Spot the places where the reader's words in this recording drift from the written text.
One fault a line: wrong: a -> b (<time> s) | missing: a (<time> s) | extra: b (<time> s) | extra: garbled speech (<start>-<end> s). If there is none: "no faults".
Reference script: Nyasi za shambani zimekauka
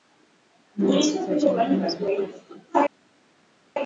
no faults